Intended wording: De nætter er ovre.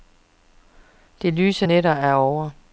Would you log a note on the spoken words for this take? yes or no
yes